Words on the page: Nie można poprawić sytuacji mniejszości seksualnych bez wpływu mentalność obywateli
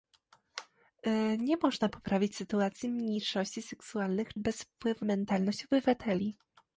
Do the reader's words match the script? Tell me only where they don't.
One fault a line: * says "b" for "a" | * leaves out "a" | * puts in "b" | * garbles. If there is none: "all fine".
all fine